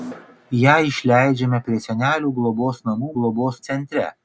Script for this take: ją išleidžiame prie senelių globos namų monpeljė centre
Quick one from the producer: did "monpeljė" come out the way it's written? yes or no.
no